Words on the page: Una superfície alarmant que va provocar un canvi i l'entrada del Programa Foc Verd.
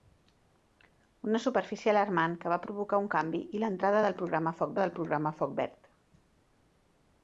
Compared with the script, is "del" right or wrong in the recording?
right